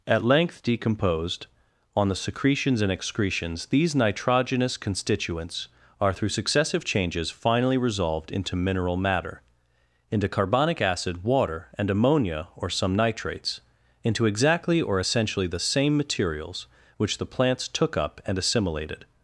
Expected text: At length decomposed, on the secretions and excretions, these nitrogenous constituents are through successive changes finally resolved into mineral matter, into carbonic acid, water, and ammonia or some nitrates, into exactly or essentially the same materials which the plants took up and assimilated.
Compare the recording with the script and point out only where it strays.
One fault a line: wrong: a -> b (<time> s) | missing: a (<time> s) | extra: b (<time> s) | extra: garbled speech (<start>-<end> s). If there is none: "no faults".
no faults